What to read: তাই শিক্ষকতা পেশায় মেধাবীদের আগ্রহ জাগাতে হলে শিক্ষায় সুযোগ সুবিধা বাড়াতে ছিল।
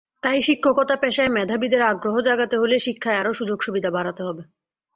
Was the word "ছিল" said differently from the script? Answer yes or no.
yes